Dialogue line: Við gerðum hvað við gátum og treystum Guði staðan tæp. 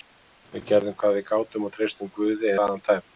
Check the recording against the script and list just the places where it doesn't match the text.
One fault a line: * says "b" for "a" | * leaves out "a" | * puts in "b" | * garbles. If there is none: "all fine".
all fine